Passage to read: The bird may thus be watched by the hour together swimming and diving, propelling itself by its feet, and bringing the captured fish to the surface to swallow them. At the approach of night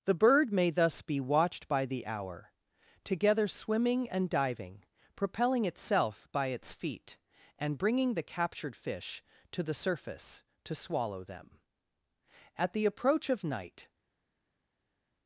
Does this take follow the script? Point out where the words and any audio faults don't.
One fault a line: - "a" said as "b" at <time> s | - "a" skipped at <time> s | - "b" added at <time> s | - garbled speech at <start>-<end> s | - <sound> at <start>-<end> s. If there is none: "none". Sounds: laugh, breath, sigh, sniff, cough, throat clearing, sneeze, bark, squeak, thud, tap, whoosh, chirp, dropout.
none